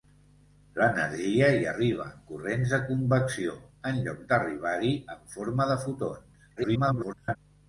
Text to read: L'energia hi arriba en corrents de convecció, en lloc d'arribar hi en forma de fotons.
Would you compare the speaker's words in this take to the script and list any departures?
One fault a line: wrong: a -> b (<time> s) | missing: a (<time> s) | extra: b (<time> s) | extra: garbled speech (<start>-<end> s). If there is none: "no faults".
extra: garbled speech (6.6-7.4 s)